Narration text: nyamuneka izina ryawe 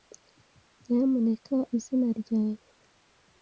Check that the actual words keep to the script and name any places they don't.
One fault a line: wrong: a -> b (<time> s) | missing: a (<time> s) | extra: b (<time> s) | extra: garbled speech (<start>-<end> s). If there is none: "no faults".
no faults